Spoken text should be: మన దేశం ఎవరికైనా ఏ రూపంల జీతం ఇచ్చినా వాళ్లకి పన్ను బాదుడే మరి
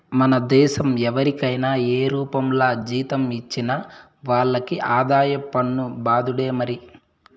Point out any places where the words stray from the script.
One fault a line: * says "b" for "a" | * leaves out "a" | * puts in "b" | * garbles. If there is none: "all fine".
* puts in "ఆదాయ"